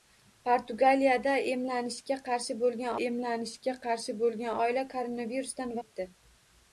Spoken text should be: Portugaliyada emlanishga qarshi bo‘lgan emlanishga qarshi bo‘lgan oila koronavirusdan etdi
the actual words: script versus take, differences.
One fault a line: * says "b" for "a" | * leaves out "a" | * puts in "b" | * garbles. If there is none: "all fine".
all fine